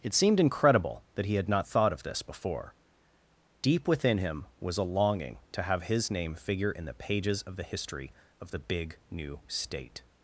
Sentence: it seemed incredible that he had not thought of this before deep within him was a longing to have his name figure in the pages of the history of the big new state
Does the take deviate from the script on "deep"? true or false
false